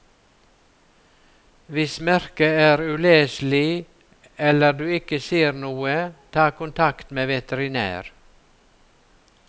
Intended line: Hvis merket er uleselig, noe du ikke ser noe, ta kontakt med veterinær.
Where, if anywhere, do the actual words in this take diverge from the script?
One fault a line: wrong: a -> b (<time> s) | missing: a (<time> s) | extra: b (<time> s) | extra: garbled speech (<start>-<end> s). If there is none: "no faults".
wrong: noe -> eller (4.4 s)